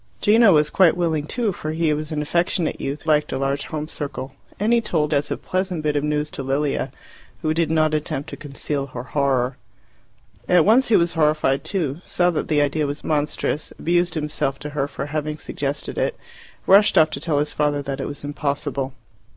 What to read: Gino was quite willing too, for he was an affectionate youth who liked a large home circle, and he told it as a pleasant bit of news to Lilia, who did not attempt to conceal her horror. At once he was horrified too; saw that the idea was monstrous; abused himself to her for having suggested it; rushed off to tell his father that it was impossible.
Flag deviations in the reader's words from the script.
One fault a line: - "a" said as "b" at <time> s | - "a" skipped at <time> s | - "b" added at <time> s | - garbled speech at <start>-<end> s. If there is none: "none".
- "who" skipped at 3.0 s
- "it" skipped at 5.1 s